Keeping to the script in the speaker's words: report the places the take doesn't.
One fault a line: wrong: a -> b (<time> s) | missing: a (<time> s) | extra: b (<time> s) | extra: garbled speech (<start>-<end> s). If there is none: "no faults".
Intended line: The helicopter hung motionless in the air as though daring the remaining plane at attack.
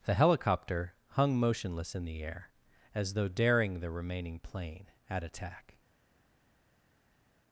no faults